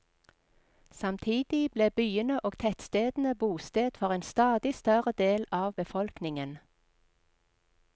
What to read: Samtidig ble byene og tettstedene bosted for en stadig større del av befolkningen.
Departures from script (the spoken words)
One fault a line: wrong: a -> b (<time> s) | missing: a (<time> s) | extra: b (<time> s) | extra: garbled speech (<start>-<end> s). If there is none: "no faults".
no faults